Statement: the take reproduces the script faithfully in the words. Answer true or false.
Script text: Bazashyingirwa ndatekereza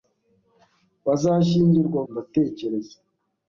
true